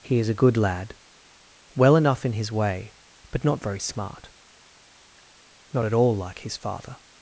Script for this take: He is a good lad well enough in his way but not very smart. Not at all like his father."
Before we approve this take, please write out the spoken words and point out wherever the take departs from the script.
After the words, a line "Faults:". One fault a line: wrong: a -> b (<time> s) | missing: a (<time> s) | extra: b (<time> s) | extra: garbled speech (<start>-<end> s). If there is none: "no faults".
He is a good lad well enough in his way but not very smart. Not at all like his father."
Faults:
no faults